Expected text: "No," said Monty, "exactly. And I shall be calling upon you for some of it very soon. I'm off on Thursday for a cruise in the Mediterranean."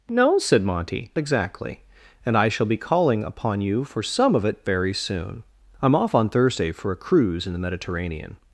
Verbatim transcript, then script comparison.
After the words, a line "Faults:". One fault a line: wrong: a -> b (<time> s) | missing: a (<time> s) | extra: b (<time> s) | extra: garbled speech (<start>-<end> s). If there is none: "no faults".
"No," said Monty, "exactly. And I shall be calling upon you for some of it very soon. I'm off on Thursday for a cruise in the Mediterranean."
Faults:
no faults